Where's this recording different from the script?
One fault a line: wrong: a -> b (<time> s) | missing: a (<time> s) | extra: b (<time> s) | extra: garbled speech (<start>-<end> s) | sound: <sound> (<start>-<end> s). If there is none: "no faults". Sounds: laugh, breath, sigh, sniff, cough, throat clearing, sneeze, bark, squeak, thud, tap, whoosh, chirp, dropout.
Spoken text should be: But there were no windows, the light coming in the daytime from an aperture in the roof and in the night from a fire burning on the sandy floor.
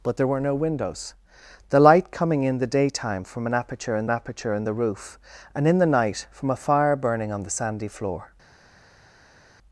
extra: aperture in (4.1 s)